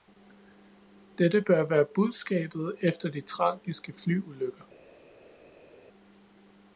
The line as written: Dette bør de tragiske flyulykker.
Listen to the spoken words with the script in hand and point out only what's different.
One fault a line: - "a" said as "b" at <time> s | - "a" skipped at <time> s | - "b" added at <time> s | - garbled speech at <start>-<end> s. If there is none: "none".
- "være budskabet efter" added at 1.7 s